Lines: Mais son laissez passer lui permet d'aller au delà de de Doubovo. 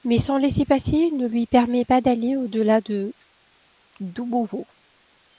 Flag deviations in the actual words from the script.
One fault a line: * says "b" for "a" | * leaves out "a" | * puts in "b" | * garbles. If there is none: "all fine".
* puts in "ne"
* puts in "pas"
* leaves out "de"